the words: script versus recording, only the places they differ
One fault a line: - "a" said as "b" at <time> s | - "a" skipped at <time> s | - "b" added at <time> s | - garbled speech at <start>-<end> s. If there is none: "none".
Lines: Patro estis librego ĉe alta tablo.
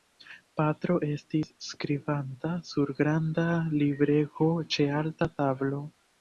- "skribanta sur granda" added at 1.7 s